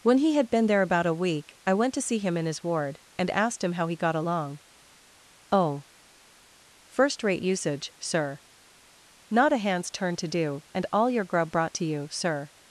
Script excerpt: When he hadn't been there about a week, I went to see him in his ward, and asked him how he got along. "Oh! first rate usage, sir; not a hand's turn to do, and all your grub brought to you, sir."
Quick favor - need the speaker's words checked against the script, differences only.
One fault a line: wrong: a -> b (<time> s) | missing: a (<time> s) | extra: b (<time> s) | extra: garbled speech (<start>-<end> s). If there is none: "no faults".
wrong: hadn't -> had (0.3 s)